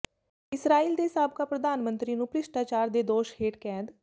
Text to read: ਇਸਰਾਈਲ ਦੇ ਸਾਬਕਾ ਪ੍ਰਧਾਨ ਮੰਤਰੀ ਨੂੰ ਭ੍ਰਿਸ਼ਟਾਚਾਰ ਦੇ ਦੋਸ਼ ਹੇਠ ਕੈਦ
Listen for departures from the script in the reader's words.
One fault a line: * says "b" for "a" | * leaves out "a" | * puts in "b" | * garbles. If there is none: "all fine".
all fine